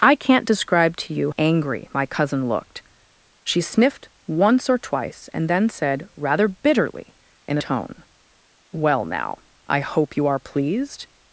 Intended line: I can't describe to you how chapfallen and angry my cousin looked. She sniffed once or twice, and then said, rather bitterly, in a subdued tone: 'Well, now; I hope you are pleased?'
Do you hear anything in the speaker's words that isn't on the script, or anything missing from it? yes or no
yes